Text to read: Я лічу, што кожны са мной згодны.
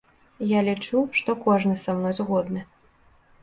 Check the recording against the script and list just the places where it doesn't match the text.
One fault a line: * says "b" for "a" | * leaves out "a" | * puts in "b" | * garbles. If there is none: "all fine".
all fine